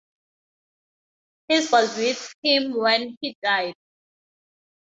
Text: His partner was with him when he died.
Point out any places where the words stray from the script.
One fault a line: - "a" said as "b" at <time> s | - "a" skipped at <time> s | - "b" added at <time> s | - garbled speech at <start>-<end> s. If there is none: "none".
- "partner" skipped at 1.7 s